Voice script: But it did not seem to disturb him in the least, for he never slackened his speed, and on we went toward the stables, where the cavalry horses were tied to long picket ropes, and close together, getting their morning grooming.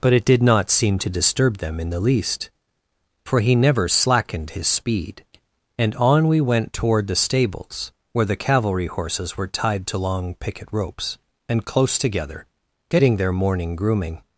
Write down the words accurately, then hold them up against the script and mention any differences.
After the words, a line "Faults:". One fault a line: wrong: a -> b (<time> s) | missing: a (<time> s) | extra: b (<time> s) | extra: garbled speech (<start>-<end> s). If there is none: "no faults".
But it did not seem to disturb them in the least, for he never slackened his speed, and on we went toward the stables, where the cavalry horses were tied to long picket ropes, and close together, getting their morning grooming.
Faults:
wrong: him -> them (1.6 s)